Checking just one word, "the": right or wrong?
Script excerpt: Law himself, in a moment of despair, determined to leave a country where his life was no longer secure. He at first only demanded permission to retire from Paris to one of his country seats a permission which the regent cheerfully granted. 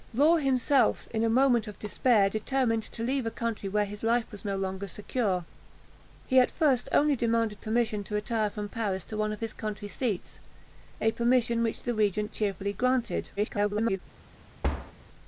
right